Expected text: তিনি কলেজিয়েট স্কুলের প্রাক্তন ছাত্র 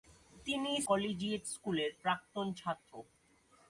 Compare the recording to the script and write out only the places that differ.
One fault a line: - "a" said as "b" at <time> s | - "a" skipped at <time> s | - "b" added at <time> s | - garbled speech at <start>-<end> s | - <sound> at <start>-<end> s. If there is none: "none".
none